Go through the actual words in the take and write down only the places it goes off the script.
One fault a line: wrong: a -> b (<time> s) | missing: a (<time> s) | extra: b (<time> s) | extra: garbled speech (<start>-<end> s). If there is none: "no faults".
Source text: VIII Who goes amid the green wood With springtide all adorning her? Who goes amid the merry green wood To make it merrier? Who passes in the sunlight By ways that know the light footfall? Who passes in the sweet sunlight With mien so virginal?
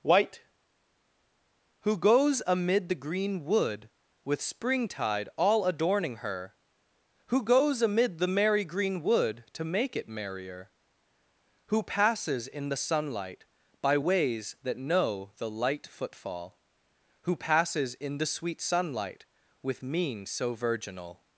wrong: VIII -> White (0.0 s)